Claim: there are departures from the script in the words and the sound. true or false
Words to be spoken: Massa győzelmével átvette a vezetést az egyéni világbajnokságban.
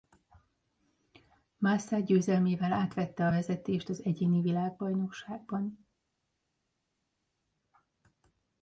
false